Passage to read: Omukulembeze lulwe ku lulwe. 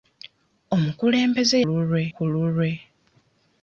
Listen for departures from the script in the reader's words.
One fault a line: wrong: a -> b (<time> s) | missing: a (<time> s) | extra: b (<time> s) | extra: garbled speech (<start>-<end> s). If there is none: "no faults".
no faults